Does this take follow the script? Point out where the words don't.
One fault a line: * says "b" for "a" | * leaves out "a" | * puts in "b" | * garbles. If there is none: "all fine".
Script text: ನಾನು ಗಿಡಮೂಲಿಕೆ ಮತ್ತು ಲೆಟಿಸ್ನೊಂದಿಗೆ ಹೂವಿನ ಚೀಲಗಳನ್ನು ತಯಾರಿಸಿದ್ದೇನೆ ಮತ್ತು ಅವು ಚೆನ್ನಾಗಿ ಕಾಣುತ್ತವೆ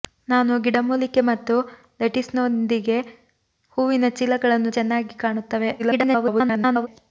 * leaves out "ತಯಾರಿಸಿದ್ದೇನೆ ಮತ್ತು ಅವು"
* garbles